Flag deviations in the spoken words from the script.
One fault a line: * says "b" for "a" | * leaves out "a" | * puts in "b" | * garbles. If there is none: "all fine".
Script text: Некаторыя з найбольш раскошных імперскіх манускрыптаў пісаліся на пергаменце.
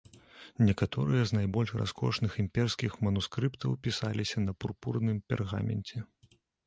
* puts in "пурпурным"